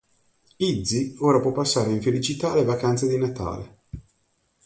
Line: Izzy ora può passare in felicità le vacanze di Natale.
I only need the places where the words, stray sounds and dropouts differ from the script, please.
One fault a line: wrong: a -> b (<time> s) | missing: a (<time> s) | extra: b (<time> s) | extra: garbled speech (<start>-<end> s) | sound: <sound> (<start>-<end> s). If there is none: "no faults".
no faults